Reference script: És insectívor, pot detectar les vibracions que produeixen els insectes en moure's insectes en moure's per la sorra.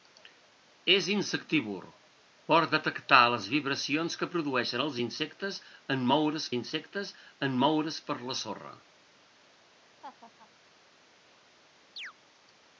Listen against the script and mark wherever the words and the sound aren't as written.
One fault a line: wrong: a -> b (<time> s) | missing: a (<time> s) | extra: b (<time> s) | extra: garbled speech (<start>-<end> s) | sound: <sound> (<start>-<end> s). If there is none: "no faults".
sound: laugh (10.0-10.5 s)
sound: chirp (12.0-12.1 s)